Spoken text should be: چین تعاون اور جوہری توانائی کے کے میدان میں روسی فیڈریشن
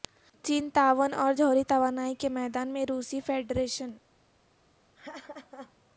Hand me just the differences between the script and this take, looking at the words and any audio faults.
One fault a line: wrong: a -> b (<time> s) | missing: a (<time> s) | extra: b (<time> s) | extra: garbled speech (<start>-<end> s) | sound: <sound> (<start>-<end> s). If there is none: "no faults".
missing: کے (2.3 s)
sound: laugh (4.9-5.8 s)